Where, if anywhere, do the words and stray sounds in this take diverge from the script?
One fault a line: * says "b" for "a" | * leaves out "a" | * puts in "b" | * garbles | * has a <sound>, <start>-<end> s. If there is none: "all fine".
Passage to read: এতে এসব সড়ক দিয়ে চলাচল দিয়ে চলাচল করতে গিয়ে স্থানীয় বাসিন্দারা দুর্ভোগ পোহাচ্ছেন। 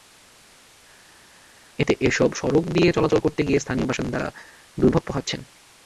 * leaves out "দিয়ে চলাচল"